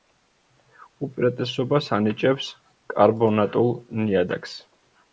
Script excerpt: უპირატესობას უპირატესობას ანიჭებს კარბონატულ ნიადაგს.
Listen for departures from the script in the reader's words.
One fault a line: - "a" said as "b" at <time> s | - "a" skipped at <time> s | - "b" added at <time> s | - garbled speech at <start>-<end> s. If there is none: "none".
- "უპირატესობას" skipped at 1.9 s